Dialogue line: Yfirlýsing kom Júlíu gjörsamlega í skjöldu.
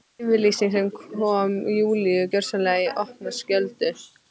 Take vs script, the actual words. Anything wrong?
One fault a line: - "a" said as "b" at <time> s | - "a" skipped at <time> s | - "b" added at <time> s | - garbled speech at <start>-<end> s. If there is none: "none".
- "sem" added at 0.8 s
- "opna" added at 3.0 s